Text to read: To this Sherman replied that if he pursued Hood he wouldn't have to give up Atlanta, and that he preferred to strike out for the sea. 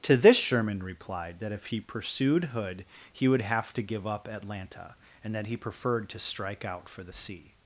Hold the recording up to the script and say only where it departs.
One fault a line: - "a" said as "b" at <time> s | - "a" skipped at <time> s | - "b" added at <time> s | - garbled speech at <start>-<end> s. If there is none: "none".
- "wouldn't" said as "would" at 3.3 s